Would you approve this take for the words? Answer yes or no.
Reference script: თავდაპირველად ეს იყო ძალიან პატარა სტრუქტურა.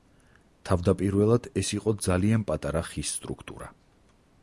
no